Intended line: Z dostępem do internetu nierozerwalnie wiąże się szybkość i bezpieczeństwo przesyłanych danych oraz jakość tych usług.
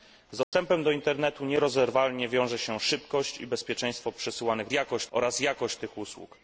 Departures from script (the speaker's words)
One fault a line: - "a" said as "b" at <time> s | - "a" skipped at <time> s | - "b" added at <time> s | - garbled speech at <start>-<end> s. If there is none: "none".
- "danych" said as "jakość" at 4.7 s